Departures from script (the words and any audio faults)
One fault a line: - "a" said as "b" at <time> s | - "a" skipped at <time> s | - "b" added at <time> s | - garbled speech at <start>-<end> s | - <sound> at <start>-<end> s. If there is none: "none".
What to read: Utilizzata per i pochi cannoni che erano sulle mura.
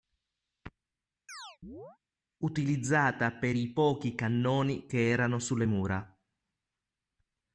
- chirp at 1.3-2.0 s